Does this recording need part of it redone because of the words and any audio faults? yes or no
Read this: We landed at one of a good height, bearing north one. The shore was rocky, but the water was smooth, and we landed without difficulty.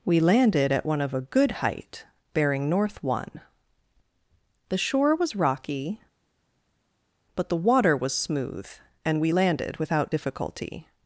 no